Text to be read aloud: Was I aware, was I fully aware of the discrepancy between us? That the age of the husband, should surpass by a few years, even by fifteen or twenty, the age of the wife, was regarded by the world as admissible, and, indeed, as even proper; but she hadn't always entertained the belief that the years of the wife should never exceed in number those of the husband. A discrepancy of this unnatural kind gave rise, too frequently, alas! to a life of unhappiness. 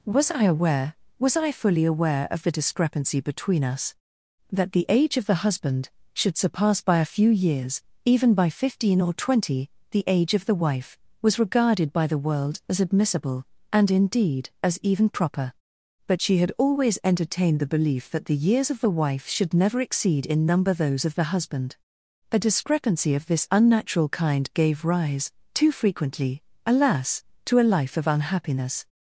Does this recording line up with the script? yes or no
no